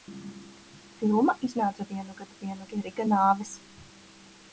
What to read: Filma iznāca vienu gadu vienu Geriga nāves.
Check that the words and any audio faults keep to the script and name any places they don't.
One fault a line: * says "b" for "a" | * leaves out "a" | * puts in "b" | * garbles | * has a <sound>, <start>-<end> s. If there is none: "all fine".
all fine